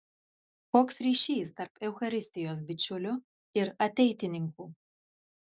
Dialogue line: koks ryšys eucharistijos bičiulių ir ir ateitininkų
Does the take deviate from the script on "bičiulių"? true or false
false